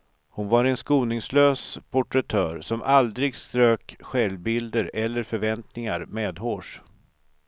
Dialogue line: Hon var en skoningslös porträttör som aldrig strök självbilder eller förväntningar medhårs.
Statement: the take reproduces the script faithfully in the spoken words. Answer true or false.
true